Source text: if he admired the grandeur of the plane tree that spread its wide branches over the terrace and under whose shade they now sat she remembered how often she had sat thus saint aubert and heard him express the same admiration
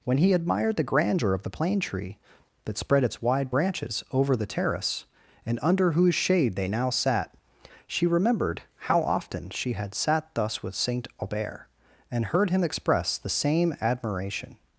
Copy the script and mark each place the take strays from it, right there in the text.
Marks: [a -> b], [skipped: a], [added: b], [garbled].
[if -> when] he admired the grandeur of the plane tree that spread its wide branches over the terrace and under whose shade they now sat she remembered how often she had sat thus [added: with] saint aubert and heard him express the same admiration